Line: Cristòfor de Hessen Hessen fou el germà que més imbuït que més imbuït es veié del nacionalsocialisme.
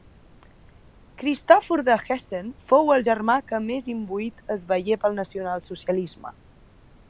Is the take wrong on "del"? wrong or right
wrong